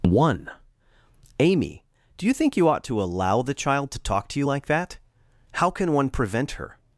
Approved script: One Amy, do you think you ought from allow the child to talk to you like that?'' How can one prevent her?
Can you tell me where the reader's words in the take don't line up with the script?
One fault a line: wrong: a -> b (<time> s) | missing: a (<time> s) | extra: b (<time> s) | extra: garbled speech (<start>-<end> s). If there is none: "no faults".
wrong: from -> to (2.9 s)